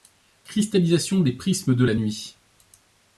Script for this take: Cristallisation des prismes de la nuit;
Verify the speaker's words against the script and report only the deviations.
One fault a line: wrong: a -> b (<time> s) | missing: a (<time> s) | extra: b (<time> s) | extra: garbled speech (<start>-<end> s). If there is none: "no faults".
no faults